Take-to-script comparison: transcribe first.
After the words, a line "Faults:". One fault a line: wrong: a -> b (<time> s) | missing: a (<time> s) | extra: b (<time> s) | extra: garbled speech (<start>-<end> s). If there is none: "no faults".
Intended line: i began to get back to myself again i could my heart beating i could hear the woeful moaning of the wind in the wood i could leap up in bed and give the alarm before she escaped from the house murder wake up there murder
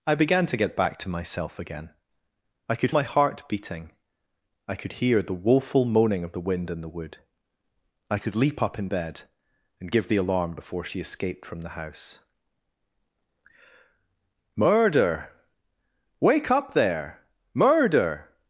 i began to get back to myself again i could my heart beating i could hear the woeful moaning of the wind in the wood i could leap up in bed and give the alarm before she escaped from the house murder wake up there murder
Faults:
no faults